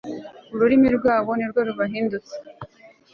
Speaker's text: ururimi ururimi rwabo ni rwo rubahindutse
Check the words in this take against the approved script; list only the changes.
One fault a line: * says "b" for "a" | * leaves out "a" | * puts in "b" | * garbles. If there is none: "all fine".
* leaves out "ururimi"